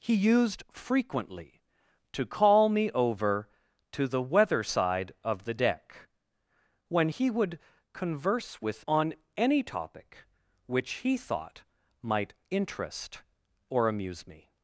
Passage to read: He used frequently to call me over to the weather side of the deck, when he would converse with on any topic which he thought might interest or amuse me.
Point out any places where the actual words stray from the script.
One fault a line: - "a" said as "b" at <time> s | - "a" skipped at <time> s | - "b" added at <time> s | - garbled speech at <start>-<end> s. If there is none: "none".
none